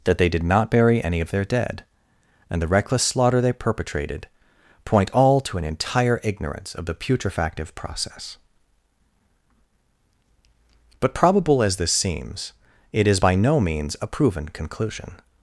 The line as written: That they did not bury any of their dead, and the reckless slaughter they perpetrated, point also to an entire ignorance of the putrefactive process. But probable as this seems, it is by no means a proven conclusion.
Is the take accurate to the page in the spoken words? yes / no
no